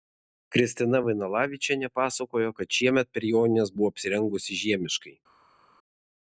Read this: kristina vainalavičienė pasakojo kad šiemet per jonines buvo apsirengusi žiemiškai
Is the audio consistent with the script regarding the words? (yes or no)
yes